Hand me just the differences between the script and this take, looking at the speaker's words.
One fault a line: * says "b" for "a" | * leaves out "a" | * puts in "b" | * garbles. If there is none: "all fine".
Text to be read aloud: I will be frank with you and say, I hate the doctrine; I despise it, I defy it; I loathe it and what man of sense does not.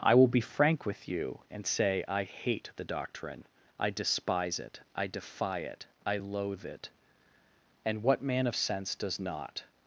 all fine